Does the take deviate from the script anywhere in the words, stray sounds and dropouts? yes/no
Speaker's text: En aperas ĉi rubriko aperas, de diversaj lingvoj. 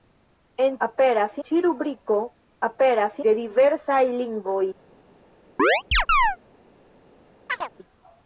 yes